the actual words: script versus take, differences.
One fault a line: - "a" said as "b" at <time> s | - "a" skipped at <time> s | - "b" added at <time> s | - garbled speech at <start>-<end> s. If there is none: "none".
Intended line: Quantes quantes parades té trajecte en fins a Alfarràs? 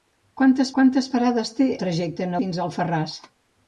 none